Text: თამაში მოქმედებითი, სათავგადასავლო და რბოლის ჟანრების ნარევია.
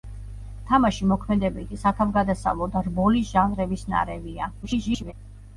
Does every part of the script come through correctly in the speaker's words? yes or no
no